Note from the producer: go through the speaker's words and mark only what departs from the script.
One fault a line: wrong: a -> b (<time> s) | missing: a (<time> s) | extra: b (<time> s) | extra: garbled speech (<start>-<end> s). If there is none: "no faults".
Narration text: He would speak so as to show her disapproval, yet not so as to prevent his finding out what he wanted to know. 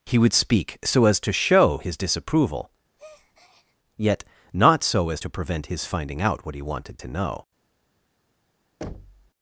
wrong: her -> his (1.8 s)